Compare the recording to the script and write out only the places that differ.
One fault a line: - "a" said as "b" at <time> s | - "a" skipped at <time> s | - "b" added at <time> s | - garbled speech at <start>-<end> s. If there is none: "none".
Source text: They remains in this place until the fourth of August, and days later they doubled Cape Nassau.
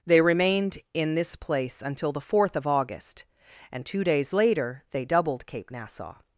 - "remains" said as "remained" at 0.2 s
- "two" added at 3.9 s